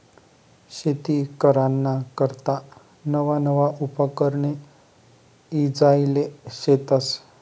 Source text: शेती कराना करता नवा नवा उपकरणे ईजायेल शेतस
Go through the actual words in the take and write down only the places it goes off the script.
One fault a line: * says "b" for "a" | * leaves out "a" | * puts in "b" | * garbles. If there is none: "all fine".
all fine